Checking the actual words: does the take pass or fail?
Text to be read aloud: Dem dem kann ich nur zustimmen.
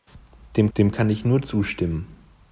pass